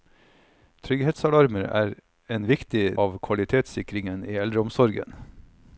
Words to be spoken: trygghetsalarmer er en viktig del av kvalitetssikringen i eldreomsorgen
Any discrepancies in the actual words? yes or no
yes